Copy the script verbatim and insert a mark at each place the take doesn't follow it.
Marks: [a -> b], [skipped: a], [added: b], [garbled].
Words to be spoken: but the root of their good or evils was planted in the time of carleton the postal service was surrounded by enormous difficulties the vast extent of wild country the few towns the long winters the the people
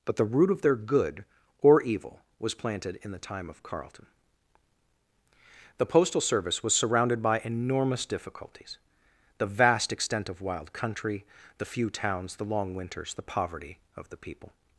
but the root of their good or [evils -> evil] was planted in the time of carleton the postal service was surrounded by enormous difficulties the vast extent of wild country the few towns the long winters the [added: poverty of] the people